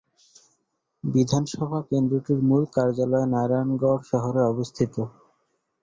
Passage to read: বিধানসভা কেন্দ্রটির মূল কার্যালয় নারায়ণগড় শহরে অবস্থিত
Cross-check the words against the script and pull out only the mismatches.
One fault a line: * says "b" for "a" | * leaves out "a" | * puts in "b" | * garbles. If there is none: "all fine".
all fine